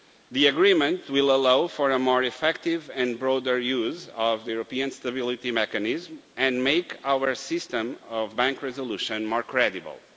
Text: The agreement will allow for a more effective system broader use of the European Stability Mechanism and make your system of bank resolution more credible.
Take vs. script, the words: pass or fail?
fail